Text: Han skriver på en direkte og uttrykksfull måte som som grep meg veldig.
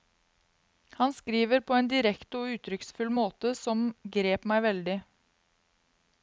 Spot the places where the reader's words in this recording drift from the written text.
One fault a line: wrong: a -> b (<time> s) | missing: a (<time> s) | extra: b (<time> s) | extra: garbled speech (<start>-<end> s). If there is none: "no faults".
missing: som (3.8 s)